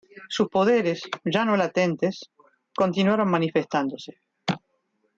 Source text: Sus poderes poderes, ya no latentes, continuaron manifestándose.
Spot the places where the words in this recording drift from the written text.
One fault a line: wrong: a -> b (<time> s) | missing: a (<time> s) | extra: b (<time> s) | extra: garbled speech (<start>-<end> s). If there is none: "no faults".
missing: poderes (1.0 s)